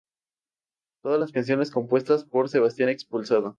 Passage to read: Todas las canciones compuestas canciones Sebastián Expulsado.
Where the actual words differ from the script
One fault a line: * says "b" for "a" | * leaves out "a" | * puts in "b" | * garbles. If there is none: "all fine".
* says "por" for "canciones"